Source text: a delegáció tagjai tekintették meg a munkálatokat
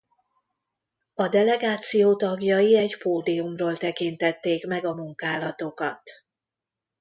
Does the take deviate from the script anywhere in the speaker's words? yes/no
yes